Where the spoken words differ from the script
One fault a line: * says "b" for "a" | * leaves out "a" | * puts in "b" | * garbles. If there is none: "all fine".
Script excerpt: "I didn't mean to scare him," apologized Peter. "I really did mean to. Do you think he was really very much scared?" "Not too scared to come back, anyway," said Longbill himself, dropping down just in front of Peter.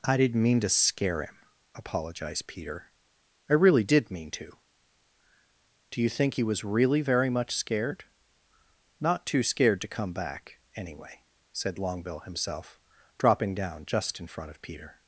all fine